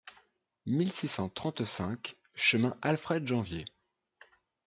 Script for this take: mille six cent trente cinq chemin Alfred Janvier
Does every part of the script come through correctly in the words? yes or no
yes